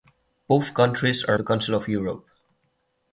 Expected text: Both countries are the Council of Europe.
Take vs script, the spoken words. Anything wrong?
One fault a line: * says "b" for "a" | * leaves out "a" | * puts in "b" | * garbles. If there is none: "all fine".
all fine